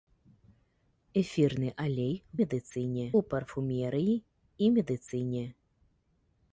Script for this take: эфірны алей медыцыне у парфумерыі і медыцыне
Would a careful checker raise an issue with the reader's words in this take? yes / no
no